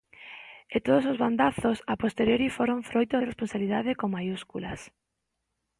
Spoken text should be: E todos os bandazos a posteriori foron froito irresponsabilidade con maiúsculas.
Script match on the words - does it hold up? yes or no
yes